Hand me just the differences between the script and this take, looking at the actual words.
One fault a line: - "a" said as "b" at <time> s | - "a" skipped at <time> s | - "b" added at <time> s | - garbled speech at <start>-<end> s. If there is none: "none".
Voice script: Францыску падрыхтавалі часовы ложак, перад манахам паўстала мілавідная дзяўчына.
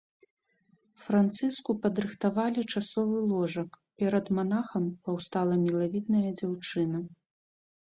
none